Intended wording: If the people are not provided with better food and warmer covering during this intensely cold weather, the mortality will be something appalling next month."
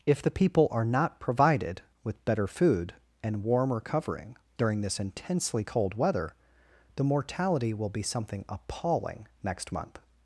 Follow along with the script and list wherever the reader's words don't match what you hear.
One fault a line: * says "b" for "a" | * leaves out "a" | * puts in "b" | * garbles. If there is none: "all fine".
all fine